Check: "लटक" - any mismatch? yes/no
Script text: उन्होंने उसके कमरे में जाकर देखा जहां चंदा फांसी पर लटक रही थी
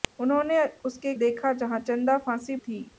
yes